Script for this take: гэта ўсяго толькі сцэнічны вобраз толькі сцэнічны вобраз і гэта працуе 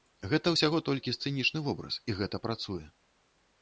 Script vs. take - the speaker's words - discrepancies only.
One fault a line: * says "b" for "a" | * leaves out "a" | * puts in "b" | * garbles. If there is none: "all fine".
* leaves out "толькі сцэнічны вобраз"